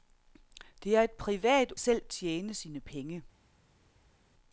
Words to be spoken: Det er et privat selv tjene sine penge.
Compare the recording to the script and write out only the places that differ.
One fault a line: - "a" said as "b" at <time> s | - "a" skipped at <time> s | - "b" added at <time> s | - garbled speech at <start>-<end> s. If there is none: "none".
none